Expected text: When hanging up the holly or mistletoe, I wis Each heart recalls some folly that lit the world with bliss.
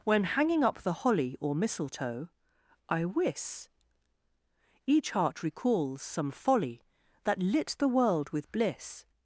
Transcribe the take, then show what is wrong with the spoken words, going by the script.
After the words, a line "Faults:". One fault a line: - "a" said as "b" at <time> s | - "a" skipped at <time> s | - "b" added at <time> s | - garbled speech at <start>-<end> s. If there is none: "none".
When hanging up the holly or mistletoe, I wis Each heart recalls some folly that lit the world with bliss.
Faults:
none